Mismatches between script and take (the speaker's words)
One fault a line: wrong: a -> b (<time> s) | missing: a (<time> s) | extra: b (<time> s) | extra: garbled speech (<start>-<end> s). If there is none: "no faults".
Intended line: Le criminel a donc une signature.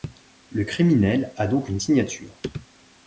no faults